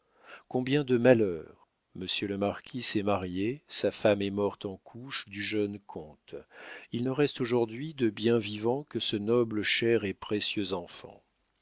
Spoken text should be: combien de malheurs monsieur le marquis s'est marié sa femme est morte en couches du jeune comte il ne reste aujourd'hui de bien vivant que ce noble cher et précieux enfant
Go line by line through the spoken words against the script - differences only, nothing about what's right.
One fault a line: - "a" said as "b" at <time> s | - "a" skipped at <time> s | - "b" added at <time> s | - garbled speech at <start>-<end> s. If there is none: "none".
none